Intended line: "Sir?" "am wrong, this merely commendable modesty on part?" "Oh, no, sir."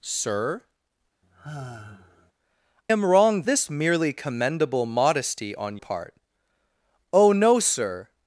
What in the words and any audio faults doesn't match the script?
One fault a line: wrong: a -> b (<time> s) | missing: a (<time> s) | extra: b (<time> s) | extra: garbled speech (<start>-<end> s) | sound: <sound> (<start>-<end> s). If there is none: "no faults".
sound: sigh (1.2-2.3 s)